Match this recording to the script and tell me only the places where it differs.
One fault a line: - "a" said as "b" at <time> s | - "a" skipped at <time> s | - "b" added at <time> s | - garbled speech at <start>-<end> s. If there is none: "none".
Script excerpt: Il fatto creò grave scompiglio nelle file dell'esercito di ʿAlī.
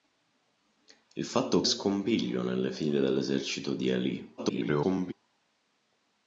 - "creò grave" skipped at 1.6 s
- garbled speech at 4.4-5.1 s